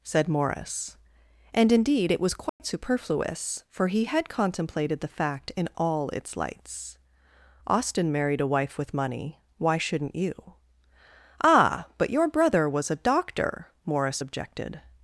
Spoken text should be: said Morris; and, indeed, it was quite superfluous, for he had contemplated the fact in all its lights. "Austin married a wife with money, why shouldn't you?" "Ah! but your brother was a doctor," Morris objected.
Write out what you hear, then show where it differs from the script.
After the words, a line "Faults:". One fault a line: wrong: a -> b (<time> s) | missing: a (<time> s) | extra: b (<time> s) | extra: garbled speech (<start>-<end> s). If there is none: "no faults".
said Morris; and, indeed, it was quite superfluous, for he had contemplated the fact in all its lights. "Austin married a wife with money, why shouldn't you?" "Ah! but your brother was a doctor," Morris objected.
Faults:
no faults